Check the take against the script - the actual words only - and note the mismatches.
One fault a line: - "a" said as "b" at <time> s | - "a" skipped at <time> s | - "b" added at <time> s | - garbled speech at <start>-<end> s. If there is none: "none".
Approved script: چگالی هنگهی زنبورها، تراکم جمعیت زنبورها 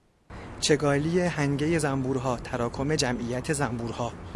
none